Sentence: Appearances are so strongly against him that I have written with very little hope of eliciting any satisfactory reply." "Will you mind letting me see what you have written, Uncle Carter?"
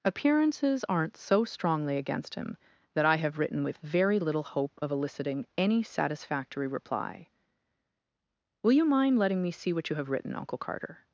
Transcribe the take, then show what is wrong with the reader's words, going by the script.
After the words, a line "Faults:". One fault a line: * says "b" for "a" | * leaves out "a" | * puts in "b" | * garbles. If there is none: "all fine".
Appearances aren't so strongly against him that I have written with very little hope of eliciting any satisfactory reply." "Will you mind letting me see what you have written, Uncle Carter?"
Faults:
* says "aren't" for "are"